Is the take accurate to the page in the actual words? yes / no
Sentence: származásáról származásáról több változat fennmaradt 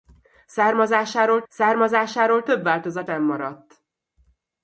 yes